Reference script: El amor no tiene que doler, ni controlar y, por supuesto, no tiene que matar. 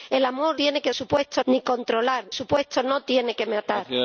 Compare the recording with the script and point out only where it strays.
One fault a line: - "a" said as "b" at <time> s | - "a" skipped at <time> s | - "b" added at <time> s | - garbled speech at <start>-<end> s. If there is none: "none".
- "no" skipped at 0.6 s
- "doler" said as "supuesto" at 0.9 s
- "y por" skipped at 2.2 s